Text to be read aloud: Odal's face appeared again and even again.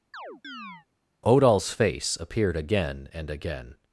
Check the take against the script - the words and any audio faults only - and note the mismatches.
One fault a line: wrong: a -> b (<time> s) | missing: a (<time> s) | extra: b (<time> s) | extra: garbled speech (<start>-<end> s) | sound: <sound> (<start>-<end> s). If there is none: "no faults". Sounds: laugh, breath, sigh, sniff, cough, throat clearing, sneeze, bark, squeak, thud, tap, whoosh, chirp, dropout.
sound: chirp (0.1-0.9 s)
missing: even (3.3 s)